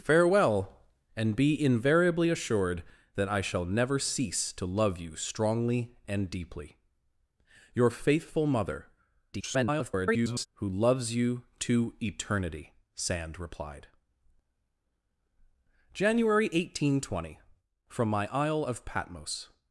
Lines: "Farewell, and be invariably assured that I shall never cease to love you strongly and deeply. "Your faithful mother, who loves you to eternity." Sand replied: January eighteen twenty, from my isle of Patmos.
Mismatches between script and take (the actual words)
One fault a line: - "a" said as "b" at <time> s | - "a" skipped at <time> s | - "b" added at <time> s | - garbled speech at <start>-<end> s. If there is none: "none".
- garbled speech at 9.3-10.5 s